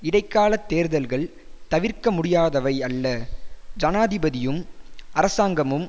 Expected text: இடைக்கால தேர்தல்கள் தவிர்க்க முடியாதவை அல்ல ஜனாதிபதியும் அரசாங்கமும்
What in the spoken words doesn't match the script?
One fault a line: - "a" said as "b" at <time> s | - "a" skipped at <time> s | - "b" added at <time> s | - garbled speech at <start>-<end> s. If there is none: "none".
none